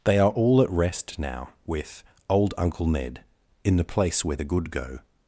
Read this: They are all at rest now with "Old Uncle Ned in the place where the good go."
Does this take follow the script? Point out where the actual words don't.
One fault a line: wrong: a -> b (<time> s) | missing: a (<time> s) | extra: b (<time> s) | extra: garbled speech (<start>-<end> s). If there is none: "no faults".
no faults